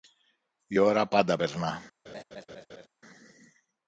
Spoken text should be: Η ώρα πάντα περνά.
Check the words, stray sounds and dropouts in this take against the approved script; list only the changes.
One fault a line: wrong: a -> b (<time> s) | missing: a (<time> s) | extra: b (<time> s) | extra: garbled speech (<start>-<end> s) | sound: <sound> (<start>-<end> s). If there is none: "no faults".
sound: laugh (2.1-2.9 s)